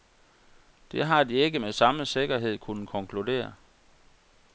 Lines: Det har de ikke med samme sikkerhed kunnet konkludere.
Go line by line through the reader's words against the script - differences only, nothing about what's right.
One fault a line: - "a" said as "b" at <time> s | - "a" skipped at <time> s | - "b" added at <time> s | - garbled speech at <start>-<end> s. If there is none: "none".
none